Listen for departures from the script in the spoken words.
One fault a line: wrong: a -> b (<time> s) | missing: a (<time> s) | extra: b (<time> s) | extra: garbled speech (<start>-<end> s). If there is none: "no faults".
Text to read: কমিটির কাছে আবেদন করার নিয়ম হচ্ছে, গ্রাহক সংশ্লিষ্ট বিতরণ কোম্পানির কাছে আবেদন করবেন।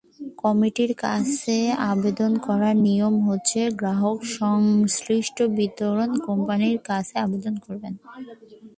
no faults